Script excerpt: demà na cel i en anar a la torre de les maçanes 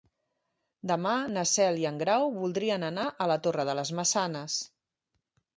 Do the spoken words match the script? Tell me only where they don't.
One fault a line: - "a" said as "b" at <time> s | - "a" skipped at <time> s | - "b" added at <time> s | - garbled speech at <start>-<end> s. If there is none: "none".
- "grau voldrien" added at 2.0 s